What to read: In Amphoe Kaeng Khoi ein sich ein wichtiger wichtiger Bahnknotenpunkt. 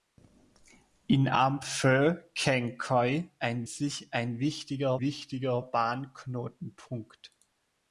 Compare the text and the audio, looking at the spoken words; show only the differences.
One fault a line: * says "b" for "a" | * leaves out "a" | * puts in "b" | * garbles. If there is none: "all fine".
all fine